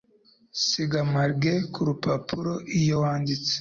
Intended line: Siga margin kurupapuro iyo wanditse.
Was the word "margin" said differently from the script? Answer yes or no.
no